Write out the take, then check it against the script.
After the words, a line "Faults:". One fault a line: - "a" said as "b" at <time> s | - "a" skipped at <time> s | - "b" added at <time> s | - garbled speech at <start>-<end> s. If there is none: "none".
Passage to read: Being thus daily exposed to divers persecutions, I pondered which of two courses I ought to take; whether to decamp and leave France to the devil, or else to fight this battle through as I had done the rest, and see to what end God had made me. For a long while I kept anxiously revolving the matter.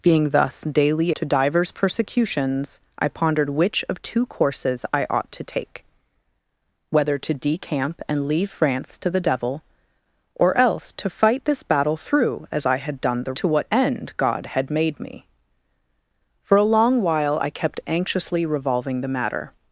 Being thus daily to divers persecutions, I pondered which of two courses I ought to take; whether to decamp and leave France to the devil, or else to fight this battle through as I had done the to what end God had made me. For a long while I kept anxiously revolving the matter.
Faults:
- "exposed" skipped at 1.1 s
- "rest and see" skipped at 13.3 s